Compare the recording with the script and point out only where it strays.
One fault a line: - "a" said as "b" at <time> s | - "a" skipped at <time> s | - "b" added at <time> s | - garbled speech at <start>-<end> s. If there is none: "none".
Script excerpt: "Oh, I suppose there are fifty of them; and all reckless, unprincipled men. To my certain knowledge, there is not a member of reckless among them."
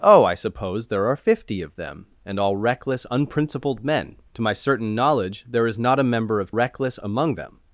none